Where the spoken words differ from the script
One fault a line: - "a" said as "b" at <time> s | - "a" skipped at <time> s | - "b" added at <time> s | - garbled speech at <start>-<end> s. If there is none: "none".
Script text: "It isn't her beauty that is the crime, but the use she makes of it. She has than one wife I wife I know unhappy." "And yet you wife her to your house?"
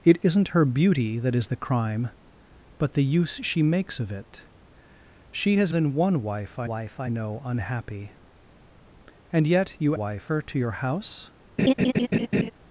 none